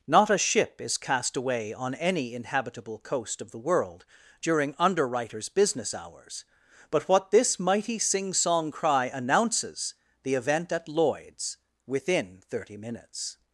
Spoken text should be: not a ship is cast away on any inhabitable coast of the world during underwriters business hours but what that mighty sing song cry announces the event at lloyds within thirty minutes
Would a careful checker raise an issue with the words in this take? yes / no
yes